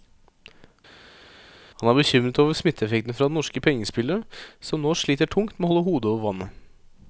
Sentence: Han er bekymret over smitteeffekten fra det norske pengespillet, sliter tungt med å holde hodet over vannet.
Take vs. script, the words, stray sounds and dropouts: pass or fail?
fail